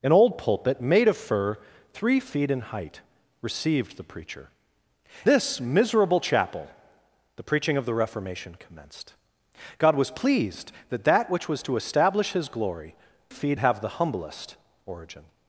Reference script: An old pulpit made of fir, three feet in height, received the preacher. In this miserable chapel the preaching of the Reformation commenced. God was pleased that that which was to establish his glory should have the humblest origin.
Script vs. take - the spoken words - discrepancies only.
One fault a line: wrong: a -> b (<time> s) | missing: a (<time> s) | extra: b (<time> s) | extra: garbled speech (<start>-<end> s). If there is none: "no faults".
missing: In (4.5 s)
wrong: should -> feet (13.3 s)